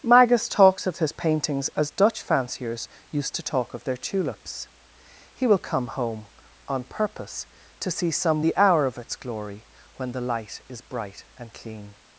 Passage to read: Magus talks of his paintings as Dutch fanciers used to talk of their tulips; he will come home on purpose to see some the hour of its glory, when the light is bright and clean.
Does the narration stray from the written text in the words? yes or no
no